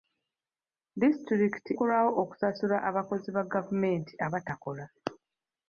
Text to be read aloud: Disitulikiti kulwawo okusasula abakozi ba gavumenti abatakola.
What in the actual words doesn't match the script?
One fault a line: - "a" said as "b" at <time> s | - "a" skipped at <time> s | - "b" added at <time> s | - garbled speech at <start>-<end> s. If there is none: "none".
none